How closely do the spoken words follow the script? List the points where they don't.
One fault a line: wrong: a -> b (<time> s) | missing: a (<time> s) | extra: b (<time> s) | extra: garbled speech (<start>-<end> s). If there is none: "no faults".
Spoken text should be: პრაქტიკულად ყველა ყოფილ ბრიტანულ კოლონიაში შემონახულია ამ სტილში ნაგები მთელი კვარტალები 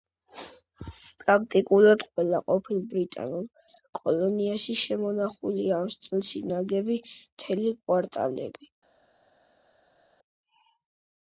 no faults